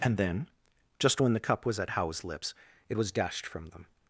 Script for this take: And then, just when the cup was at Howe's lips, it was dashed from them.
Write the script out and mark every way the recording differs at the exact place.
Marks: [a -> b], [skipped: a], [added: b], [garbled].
And then, just when the cup was at Howe's lips, it was dashed from them.